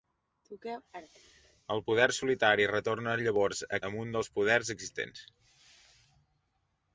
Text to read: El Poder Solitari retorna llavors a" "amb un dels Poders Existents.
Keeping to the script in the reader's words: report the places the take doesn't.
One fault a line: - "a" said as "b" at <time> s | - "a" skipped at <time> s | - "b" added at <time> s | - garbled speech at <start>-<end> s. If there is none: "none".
none